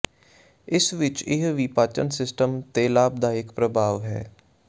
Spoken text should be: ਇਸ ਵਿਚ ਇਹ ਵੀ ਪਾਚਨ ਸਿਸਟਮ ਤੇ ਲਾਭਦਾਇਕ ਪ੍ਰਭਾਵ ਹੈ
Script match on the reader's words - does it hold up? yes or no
yes